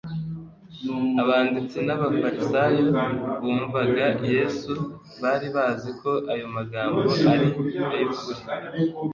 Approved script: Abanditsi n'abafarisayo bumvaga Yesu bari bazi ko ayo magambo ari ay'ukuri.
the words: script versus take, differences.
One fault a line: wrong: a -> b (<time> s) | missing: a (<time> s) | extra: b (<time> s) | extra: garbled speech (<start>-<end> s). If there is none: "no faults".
no faults